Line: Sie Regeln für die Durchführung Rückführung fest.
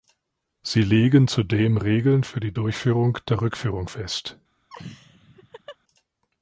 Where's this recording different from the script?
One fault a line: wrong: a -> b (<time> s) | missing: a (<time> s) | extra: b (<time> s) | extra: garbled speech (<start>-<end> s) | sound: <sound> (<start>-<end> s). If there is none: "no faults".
extra: legen zudem (0.8 s)
extra: der (3.3 s)
sound: laugh (4.7-5.8 s)